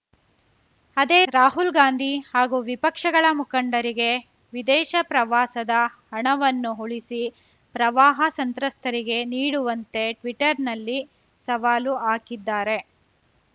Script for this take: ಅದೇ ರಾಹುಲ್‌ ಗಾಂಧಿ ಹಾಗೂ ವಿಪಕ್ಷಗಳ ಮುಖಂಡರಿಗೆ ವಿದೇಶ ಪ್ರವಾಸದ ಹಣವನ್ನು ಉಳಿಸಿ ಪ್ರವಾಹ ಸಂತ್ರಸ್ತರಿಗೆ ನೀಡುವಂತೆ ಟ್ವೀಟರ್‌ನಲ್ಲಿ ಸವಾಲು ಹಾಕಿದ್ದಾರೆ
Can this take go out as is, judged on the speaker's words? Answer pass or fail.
pass